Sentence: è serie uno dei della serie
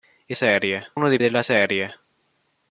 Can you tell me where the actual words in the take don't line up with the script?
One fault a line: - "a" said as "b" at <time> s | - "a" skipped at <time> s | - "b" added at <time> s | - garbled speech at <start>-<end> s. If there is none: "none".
none